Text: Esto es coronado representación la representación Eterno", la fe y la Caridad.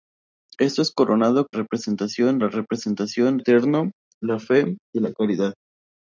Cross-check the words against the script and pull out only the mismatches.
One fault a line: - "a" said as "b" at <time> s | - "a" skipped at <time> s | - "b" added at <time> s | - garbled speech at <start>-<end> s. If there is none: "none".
none